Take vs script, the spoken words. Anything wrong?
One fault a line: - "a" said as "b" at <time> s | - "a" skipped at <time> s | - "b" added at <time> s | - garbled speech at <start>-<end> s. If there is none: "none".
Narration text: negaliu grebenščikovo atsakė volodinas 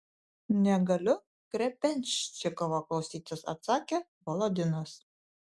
- "klausytis" added at 2.9 s